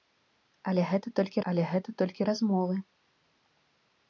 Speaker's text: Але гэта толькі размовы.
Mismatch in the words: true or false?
true